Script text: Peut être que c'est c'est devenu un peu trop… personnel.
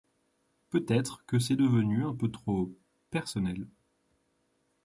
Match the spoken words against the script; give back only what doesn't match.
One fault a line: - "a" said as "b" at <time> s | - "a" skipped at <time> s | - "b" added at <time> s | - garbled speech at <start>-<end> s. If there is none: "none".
- "c'est" skipped at 1.6 s